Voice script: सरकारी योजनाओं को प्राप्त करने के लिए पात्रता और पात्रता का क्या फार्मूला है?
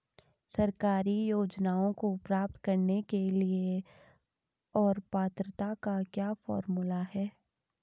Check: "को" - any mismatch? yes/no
no